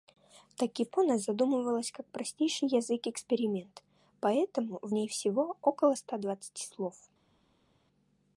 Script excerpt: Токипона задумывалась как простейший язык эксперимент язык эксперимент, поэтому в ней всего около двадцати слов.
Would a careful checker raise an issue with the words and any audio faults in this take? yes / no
yes